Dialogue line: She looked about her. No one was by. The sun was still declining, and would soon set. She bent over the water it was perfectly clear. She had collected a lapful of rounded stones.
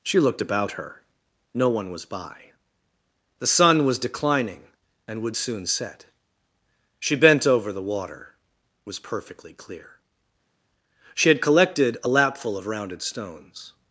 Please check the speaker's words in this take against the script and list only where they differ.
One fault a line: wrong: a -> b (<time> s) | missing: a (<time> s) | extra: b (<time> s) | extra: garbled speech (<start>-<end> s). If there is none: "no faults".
missing: still (4.0 s)